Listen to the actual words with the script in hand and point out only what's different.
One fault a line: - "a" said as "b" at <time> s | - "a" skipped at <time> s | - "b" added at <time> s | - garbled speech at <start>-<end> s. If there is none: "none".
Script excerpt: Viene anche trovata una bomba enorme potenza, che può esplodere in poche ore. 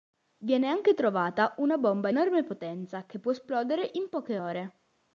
none